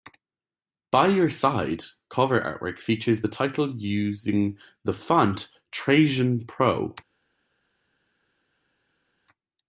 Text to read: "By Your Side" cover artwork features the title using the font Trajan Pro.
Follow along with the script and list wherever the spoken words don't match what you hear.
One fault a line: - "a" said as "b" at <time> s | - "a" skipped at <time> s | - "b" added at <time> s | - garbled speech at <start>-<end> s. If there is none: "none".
none